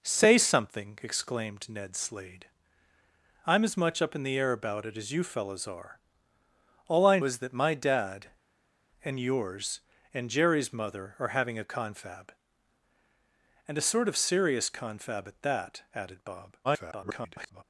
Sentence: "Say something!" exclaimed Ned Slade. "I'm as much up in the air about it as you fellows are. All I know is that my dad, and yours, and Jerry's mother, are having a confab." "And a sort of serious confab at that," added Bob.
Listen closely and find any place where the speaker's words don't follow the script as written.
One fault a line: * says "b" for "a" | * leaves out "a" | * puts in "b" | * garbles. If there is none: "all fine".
* leaves out "know"
* garbles